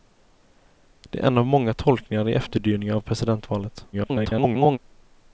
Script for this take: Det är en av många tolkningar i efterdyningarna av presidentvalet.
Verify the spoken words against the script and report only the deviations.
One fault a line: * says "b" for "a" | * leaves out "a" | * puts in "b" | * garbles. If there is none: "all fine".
* garbles